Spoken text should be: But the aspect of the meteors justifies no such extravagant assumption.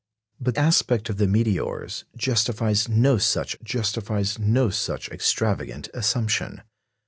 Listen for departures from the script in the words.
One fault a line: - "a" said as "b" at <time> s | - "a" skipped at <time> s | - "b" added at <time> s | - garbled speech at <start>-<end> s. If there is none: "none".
- "the" skipped at 0.6 s
- "justifies no such" added at 3.6 s